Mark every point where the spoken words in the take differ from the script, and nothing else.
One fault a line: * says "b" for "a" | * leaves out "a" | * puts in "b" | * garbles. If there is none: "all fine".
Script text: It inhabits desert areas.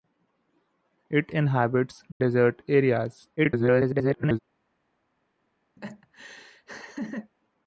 * garbles